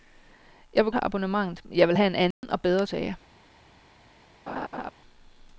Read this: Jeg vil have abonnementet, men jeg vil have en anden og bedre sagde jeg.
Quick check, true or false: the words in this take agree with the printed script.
true